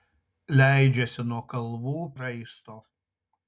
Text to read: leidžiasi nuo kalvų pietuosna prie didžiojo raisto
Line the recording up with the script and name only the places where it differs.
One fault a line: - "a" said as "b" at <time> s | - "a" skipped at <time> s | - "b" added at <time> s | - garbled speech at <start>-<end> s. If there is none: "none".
- "pietuosna prie didžiojo" skipped at 1.9 s